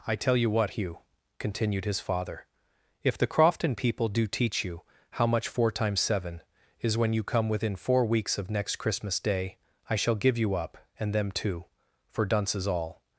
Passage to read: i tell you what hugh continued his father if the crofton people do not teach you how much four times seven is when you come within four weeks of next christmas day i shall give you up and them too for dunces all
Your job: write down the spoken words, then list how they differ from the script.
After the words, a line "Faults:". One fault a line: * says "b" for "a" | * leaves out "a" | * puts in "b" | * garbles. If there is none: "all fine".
i tell you what hugh continued his father if the crofton people do teach you how much four times seven is when you come within four weeks of next christmas day i shall give you up and them too for dunces all
Faults:
* leaves out "not"